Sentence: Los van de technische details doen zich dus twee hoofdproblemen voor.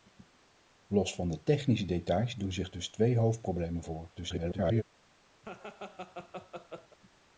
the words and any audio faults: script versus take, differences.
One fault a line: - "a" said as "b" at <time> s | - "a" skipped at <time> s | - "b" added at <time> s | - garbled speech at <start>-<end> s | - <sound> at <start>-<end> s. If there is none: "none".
- garbled speech at 4.1-4.8 s
- laugh at 5.4-7.0 s